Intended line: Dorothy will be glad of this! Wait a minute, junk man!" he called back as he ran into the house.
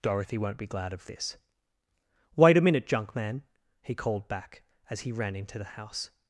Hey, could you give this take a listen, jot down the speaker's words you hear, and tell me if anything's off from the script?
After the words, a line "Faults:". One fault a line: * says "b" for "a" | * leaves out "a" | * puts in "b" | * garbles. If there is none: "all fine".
Dorothy won't be glad of this! Wait a minute, junk man!" he called back as he ran into the house.
Faults:
* says "won't" for "will"